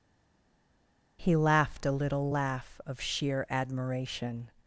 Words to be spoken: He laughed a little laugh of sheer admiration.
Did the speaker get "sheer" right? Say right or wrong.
right